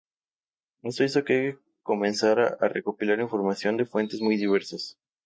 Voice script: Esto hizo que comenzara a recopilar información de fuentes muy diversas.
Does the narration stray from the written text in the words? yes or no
no